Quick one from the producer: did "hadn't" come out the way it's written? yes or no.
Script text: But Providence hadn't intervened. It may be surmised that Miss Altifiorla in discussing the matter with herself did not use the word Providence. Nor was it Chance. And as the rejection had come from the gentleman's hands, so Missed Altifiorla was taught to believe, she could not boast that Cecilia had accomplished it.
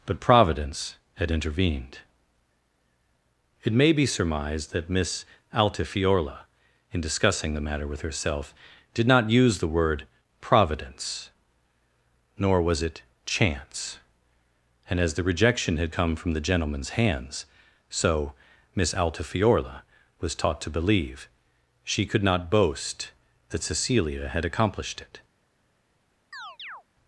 no